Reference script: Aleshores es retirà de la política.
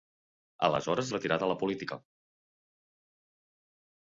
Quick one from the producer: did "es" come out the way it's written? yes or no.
no